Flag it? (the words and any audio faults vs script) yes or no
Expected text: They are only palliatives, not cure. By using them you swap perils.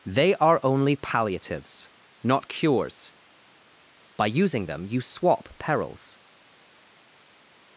yes